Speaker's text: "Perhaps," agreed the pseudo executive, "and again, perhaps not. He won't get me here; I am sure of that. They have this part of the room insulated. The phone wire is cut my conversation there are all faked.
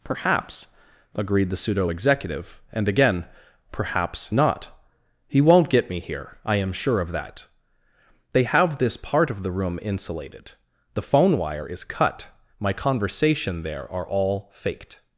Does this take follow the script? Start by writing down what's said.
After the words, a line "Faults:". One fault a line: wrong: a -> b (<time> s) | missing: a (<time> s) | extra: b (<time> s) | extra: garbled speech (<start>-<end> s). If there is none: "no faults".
"Perhaps," agreed the pseudo executive, "and again, perhaps not. He won't get me here; I am sure of that. They have this part of the room insulated. The phone wire is cut my conversation there are all faked.
Faults:
no faults